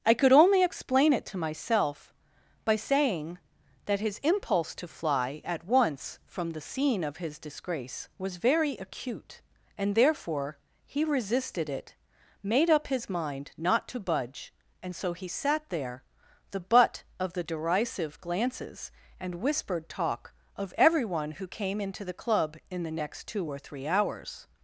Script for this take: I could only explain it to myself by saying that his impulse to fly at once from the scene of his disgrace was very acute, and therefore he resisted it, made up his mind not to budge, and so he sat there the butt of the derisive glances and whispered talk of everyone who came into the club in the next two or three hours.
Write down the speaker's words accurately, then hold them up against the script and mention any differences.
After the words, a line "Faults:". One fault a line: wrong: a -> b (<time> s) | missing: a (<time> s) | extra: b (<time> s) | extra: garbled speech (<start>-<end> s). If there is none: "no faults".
I could only explain it to myself by saying that his impulse to fly at once from the scene of his disgrace was very acute, and therefore he resisted it, made up his mind not to budge, and so he sat there the butt of the derisive glances and whispered talk of everyone who came into the club in the next two or three hours.
Faults:
no faults